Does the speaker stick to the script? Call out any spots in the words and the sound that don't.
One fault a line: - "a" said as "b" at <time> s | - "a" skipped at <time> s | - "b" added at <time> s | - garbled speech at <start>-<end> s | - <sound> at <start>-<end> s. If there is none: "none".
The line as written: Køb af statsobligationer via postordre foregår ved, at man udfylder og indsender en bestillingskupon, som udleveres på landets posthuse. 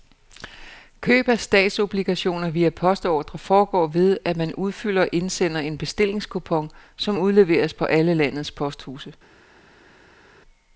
- "alle" added at 7.8 s